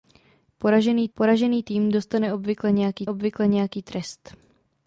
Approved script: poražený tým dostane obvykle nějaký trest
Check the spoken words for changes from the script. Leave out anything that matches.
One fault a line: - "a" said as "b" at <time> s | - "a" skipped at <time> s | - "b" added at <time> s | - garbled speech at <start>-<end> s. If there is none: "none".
- "poražený" added at 1.1 s
- "obvykle nějaký" added at 3.1 s